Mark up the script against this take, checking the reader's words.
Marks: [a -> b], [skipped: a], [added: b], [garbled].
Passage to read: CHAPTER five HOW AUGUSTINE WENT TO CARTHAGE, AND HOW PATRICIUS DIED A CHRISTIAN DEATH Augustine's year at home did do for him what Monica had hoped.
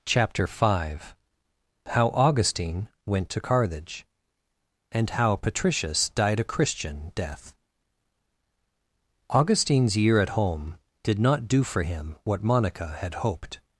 CHAPTER five HOW AUGUSTINE WENT TO CARTHAGE, AND HOW PATRICIUS DIED A CHRISTIAN DEATH Augustine's year at home did [added: not] do for him what Monica had hoped.